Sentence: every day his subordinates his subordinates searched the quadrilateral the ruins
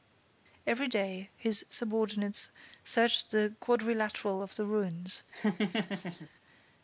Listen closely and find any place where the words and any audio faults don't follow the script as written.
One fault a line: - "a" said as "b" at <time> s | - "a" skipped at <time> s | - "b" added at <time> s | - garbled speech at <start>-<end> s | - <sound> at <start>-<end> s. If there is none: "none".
- "his subordinates" skipped at 2.5 s
- "of" added at 4.4 s
- laugh at 5.3-6.3 s